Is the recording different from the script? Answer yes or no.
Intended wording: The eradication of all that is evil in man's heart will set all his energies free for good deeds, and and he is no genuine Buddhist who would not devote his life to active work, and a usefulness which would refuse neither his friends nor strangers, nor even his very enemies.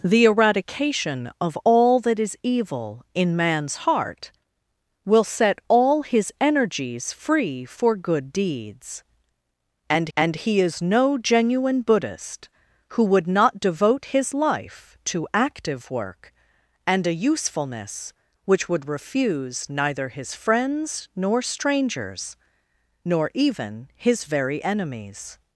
no